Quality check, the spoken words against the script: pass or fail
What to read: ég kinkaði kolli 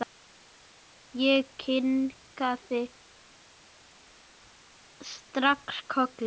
fail